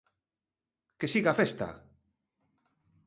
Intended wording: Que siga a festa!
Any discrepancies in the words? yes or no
no